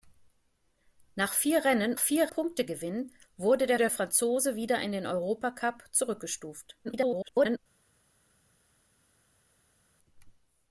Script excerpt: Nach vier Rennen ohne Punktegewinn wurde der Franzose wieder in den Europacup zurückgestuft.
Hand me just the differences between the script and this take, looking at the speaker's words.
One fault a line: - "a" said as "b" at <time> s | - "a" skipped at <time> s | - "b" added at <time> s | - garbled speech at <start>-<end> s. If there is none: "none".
- "ohne" said as "vier" at 2.0 s
- "der" added at 3.8 s
- garbled speech at 6.8-7.6 s